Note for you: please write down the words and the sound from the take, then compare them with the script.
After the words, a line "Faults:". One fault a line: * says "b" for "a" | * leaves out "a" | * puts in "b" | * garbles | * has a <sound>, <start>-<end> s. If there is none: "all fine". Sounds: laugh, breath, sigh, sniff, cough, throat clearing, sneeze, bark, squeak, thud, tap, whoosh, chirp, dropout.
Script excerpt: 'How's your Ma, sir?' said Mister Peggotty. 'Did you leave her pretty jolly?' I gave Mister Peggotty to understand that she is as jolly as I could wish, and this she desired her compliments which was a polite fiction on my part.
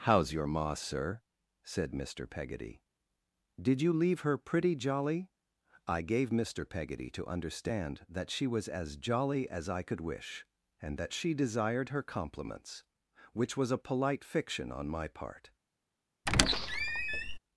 'How's your Ma, sir?' said Mister Peggotty. 'Did you leave her pretty jolly?' I gave Mister Peggotty to understand that she was as jolly as I could wish, and that she desired her compliments which was a polite fiction on my part.
Faults:
* says "was" for "is"
* says "that" for "this"
* has a squeak, 16.3-17.4 s